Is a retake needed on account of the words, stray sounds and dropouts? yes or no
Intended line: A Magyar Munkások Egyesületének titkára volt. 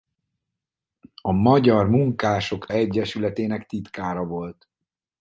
no